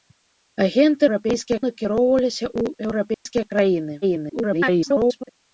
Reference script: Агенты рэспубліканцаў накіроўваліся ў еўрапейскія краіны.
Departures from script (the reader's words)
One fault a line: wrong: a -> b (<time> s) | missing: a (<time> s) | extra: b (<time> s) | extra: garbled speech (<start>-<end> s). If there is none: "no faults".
wrong: рэспубліканцаў -> еўрапейскія (1.1 s)
extra: garbled speech (4.0-5.3 s)